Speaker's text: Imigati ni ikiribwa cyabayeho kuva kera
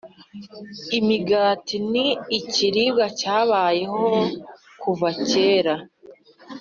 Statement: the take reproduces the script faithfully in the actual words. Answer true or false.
true